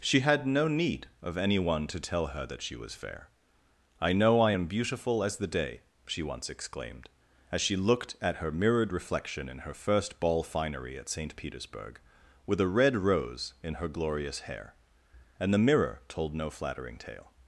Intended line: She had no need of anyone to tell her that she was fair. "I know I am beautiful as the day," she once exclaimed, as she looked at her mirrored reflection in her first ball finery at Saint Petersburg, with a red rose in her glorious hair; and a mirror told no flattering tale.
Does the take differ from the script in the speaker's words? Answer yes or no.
yes